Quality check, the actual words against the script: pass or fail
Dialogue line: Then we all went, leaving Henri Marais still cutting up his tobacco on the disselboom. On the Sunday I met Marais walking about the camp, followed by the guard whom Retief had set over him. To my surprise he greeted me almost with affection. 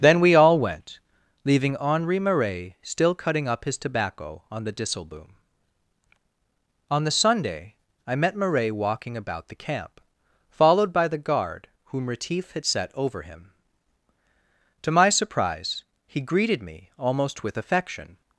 pass